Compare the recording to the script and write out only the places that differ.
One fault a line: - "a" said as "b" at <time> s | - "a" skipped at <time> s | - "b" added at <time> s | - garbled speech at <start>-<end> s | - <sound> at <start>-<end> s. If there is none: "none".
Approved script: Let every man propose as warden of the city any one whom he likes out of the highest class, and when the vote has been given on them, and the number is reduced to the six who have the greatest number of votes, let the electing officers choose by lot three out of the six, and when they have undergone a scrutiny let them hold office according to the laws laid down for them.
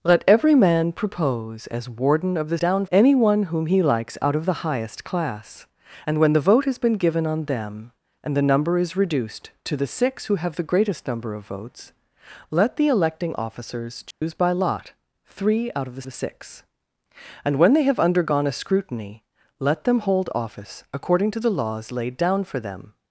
- "city" said as "down" at 2.6 s
- dropout at 14.1-14.2 s
- "the" added at 16.0 s